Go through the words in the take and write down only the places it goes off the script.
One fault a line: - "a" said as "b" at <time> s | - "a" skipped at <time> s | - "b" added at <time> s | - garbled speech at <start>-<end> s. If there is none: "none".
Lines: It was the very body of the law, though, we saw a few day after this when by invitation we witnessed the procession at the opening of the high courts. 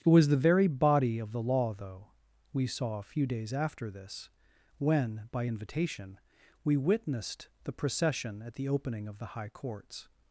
- "day" said as "days" at 3.3 s